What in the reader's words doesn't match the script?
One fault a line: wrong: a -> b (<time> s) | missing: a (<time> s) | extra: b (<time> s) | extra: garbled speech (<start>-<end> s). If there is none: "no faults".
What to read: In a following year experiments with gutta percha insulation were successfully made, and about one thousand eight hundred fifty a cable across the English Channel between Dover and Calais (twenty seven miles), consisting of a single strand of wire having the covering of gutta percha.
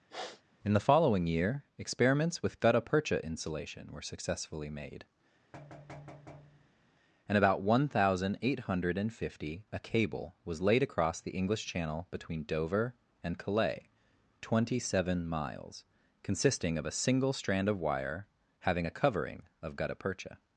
wrong: a -> the (0.7 s)
extra: was laid (10.4 s)
wrong: the -> a (18.8 s)